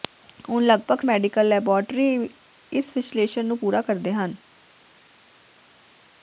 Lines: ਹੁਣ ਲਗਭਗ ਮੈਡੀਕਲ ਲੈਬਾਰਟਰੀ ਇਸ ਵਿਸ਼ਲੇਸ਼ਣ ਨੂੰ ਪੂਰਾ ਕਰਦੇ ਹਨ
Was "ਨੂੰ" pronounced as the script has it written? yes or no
yes